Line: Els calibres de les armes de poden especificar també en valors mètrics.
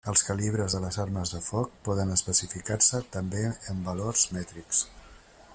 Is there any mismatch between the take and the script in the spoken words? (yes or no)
yes